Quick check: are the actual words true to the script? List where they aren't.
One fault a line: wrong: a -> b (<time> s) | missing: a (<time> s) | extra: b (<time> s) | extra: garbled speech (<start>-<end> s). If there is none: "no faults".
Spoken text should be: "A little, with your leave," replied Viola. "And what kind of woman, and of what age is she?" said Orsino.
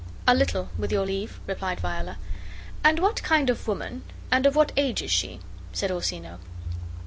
no faults